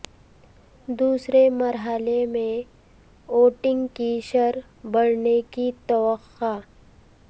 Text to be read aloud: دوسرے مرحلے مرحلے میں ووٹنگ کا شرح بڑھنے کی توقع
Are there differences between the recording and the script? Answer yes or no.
yes